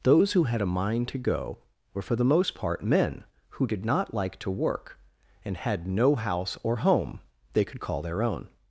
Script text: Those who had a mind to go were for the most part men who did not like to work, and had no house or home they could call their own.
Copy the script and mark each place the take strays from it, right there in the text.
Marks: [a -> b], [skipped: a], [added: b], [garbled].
Those who had a mind to go were for the most part men who did not like to work, and had no house or home they could call their own.